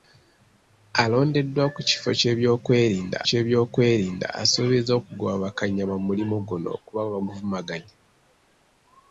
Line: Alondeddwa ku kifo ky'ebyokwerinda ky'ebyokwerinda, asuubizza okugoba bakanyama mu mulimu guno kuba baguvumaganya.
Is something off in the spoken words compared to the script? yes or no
no